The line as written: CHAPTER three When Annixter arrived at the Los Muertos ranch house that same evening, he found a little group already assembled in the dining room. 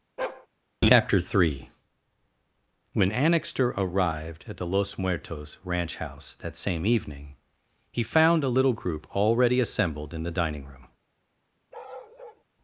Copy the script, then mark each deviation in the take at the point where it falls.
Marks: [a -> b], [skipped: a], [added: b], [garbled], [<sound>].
[bark] CHAPTER three When Annixter arrived at the Los Muertos ranch house that same evening, he found a little group already assembled in the dining room. [bark]